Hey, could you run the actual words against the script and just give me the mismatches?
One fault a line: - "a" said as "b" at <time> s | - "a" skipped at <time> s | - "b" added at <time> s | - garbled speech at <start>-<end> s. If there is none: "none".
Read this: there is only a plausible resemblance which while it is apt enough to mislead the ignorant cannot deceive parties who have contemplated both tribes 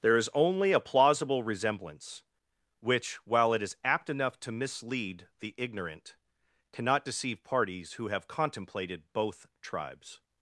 none